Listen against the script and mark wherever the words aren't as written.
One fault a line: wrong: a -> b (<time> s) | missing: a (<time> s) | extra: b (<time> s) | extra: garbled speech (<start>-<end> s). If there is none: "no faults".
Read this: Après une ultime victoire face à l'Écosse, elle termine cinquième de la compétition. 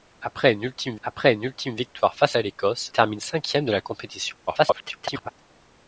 extra: après une ultime (1.0 s)
missing: elle (2.9 s)
extra: garbled speech (4.5-5.3 s)